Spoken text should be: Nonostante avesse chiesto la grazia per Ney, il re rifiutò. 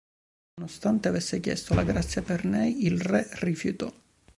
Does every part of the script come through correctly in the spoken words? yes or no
yes